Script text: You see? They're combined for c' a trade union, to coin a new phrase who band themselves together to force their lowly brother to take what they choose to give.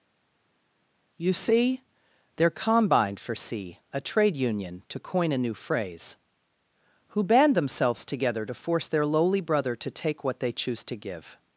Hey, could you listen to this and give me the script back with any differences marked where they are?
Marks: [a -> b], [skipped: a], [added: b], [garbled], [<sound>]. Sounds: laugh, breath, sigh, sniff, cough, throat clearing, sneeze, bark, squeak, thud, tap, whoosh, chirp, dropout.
You see? They're combined for c' a trade union, to coin a new phrase who band themselves together to force their lowly brother to take what they choose to give.